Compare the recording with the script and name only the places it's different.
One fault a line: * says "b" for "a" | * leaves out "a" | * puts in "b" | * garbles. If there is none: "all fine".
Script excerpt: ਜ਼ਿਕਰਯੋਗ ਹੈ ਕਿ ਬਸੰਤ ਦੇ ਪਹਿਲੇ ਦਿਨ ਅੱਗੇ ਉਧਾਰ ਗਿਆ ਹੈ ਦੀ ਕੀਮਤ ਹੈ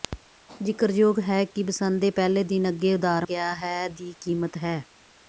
all fine